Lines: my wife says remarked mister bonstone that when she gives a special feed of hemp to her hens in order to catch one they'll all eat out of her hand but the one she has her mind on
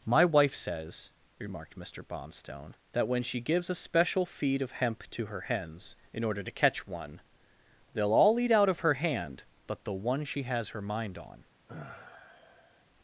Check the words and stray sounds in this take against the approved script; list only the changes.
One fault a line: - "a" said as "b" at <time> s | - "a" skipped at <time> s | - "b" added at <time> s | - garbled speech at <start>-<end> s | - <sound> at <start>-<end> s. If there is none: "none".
- sigh at 11.7-12.9 s